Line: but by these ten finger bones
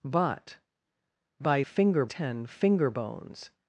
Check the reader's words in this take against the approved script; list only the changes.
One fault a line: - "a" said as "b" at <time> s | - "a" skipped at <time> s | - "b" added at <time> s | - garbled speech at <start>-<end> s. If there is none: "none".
- "these" said as "finger" at 1.6 s